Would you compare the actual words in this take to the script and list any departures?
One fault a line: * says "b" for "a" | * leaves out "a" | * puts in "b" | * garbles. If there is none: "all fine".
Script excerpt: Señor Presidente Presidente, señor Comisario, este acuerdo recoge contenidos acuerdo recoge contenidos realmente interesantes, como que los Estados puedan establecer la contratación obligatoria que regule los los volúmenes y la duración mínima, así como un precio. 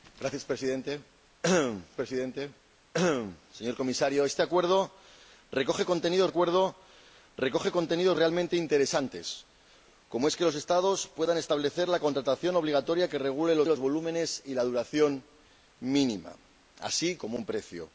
all fine